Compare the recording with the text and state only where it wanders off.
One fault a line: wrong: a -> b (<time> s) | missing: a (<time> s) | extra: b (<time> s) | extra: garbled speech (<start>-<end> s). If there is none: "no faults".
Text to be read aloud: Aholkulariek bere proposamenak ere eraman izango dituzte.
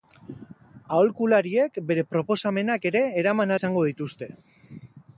no faults